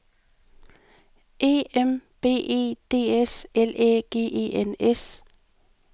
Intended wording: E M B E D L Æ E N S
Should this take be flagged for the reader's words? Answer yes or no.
yes